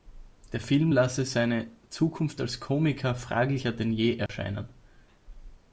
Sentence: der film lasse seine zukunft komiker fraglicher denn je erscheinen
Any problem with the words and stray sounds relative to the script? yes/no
yes